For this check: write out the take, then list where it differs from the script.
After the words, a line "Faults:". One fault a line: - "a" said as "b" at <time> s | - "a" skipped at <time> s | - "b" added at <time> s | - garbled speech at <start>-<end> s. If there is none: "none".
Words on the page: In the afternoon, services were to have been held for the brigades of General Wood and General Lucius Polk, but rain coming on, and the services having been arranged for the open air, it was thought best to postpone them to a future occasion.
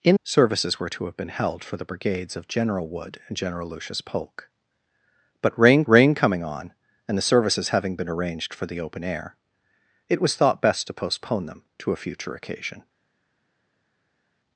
In services were to have been held for the brigades of General Wood and General Lucius Polk, but rain rain coming on, and the services having been arranged for the open air, it was thought best to postpone them to a future occasion.
Faults:
- "the afternoon" skipped at 0.1 s
- "rain" added at 5.9 s